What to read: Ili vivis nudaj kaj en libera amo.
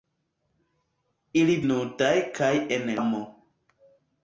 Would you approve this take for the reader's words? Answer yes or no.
no